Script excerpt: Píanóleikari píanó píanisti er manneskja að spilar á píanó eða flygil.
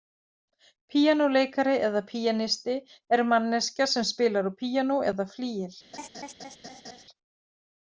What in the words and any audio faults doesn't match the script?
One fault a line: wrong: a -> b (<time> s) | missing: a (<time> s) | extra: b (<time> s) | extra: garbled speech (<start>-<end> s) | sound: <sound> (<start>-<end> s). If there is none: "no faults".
wrong: píanó -> eða (1.9 s)
wrong: að -> sem (4.0 s)
sound: laugh (5.9-7.0 s)